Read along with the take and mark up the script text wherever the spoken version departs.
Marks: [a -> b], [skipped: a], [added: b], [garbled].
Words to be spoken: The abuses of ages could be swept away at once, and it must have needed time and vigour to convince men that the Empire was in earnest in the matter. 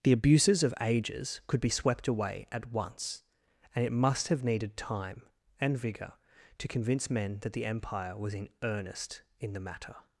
The abuses of ages could be swept away at once, and it must have needed time and vigour to convince men that the Empire was in earnest in the matter.